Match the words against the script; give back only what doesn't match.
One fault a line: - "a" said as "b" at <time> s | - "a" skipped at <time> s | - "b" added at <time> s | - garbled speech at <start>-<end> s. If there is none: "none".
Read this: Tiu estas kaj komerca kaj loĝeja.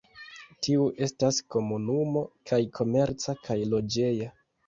- "komunumo" added at 1.6 s